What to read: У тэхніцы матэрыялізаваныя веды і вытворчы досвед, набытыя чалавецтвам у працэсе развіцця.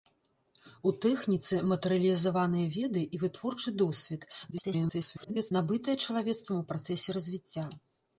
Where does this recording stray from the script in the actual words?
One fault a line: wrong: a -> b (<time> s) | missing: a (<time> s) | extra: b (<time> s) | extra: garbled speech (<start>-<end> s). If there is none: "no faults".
extra: garbled speech (4.5-5.5 s)